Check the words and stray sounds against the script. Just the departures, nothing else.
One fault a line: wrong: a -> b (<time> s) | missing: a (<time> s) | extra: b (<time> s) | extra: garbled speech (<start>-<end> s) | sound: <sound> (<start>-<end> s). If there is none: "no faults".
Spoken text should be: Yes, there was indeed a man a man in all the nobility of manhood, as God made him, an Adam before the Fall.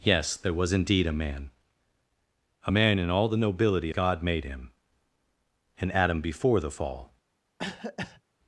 missing: of manhood as (3.9 s)
sound: cough (7.6-8.2 s)